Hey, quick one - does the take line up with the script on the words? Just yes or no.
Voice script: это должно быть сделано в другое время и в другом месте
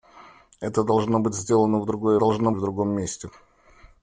no